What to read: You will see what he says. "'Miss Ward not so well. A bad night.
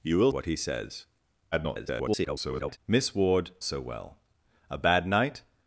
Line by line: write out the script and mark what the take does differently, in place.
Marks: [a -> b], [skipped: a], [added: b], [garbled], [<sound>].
You will [skipped: see] what he says. [garbled] "'Miss Ward [skipped: not] so well. A bad night.